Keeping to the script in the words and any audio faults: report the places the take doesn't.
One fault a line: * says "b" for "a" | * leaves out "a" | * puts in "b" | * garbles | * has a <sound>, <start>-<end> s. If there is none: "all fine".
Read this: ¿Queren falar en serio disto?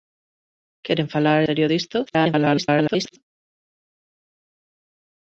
* leaves out "en"
* garbles